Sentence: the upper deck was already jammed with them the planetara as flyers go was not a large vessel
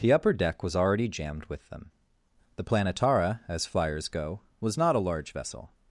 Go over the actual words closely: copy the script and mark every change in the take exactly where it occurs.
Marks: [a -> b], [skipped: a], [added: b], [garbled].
the upper deck was already jammed with them the planetara as flyers go was not a large vessel